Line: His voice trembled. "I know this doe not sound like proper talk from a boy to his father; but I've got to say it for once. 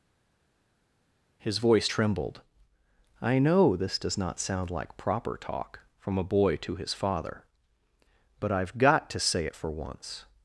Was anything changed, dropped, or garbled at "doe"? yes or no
yes